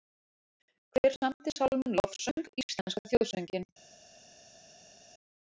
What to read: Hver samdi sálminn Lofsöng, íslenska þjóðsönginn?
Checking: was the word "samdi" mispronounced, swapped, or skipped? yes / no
no